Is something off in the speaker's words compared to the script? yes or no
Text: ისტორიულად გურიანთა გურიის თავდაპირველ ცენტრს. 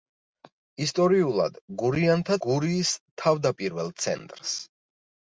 no